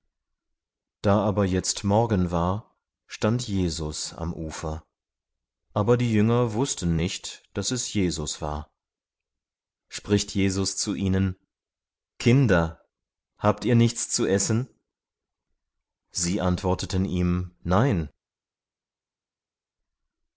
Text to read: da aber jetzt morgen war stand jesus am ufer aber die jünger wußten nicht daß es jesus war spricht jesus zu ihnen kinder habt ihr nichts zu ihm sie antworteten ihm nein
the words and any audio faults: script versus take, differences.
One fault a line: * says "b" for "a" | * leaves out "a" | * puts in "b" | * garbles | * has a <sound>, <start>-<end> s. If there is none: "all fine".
* says "essen" for "ihm"